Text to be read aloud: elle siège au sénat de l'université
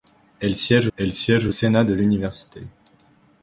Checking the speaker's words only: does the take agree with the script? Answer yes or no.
no